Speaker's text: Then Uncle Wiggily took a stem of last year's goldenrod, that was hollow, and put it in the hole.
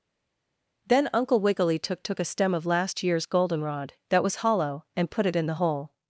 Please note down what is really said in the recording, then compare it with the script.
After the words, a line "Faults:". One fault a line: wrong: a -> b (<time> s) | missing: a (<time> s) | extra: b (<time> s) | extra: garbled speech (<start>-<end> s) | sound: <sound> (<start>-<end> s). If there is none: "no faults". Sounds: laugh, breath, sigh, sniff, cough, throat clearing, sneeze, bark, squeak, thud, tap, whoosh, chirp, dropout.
Then Uncle Wiggily took took a stem of last year's goldenrod, that was hollow, and put it in the hole.
Faults:
extra: took (2.0 s)